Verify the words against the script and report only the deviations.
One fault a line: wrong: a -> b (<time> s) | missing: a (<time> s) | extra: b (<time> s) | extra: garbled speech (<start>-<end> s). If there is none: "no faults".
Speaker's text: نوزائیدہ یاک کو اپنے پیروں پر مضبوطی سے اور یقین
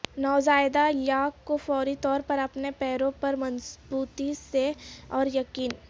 extra: فوری طور پر (1.6 s)